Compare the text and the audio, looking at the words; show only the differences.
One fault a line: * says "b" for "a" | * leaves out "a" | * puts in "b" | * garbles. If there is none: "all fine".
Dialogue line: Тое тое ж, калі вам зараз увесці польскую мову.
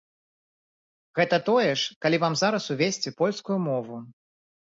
* says "Гэта" for "Тое"